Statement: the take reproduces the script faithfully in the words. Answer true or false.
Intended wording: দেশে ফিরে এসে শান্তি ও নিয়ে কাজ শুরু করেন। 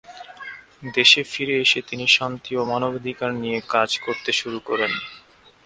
false